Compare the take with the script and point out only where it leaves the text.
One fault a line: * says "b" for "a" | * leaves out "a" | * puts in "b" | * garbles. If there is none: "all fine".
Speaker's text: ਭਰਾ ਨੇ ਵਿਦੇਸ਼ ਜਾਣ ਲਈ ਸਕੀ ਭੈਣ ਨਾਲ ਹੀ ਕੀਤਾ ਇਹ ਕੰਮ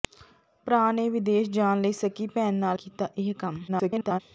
* leaves out "ਹੀ"
* garbles